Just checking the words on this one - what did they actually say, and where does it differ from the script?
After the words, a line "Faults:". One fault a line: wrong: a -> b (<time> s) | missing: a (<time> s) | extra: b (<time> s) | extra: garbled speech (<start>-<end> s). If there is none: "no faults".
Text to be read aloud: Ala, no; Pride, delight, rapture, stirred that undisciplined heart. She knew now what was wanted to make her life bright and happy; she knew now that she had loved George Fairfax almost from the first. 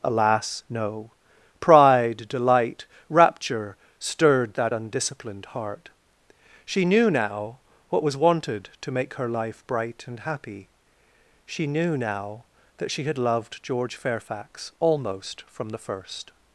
Alas, no; Pride, delight, rapture, stirred that undisciplined heart. She knew now what was wanted to make her life bright and happy; she knew now that she had loved George Fairfax almost from the first.
Faults:
wrong: Ala -> Alas (0.0 s)